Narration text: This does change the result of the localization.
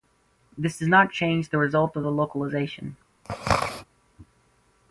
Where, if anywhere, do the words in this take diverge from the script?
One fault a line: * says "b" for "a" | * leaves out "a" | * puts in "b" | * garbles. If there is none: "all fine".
* puts in "not"